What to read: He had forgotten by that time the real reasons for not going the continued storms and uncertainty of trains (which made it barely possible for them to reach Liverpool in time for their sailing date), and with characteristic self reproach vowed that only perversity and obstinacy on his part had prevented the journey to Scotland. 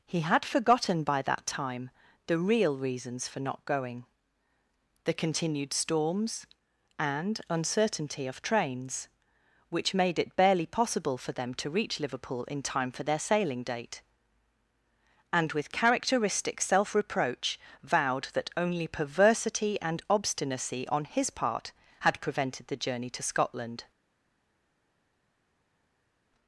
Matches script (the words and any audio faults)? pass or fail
pass